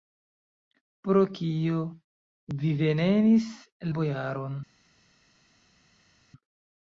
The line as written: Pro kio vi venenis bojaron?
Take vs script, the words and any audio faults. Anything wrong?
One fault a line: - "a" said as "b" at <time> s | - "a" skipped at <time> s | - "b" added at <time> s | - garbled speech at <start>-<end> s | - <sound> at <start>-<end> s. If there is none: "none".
none